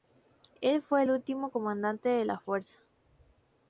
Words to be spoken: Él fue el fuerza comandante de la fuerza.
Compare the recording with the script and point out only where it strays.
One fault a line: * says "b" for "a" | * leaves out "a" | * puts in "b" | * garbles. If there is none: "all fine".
* says "último" for "fuerza"